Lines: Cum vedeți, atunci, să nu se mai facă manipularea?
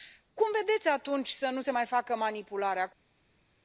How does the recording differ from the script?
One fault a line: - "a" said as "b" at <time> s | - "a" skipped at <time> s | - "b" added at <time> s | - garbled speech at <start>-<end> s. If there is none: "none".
none